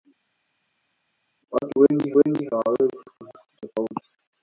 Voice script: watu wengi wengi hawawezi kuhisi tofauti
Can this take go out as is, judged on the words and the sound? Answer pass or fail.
pass